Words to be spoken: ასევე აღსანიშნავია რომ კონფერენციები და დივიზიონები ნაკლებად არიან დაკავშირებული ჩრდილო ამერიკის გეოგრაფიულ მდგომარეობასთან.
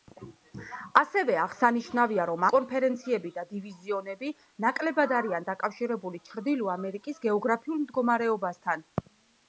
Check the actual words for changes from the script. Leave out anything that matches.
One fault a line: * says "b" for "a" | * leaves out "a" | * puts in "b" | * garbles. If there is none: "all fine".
all fine